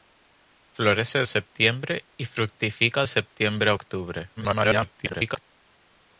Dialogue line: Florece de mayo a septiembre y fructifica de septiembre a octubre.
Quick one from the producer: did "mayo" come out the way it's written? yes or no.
no